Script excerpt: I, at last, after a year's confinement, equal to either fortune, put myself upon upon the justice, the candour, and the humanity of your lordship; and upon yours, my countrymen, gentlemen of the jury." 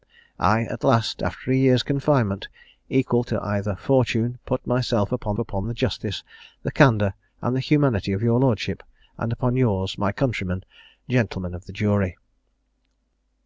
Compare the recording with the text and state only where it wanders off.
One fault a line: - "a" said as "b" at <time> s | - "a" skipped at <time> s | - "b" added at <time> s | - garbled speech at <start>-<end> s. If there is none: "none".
none